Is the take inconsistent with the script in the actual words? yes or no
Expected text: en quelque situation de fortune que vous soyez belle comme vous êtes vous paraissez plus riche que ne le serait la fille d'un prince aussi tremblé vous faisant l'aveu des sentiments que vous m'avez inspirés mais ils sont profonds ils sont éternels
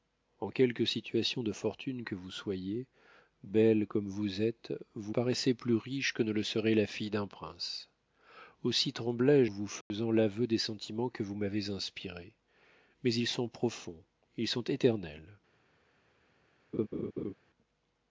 no